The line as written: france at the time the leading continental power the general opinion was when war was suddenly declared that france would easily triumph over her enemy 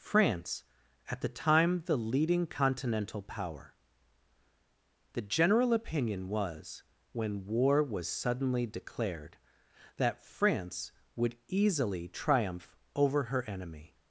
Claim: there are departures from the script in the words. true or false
false